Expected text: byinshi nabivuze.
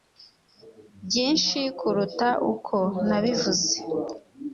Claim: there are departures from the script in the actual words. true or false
true